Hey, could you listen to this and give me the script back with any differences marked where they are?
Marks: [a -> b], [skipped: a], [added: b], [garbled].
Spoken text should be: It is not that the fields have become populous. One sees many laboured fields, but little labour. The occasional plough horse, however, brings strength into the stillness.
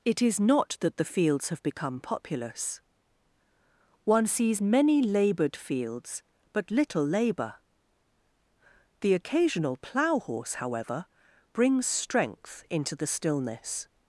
It is not that the fields have become populous. One sees many laboured fields, but little labour. The occasional plough horse, however, brings strength into the stillness.